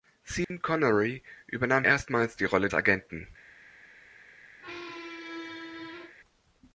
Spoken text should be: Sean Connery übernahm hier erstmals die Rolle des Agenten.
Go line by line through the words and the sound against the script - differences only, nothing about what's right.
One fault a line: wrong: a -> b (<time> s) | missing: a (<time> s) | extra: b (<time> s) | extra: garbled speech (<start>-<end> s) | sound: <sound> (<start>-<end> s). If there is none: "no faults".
sound: dropout (0.4-0.5 s)
missing: hier (1.9 s)
missing: des (2.7 s)
sound: squeak (4.6-6.1 s)